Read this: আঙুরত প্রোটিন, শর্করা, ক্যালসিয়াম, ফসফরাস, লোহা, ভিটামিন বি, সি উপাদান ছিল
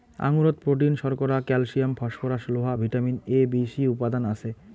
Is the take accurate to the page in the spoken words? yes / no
no